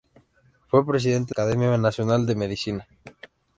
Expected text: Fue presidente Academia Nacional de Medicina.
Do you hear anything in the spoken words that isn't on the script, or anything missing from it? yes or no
no